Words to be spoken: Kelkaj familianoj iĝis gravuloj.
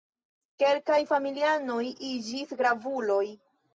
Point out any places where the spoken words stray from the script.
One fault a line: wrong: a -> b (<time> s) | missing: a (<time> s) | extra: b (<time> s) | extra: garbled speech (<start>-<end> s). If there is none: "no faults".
no faults